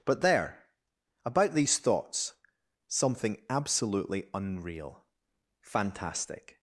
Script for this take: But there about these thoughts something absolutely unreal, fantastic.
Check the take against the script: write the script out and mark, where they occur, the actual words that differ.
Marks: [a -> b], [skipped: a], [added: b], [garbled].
But there about these thoughts something absolutely unreal, fantastic.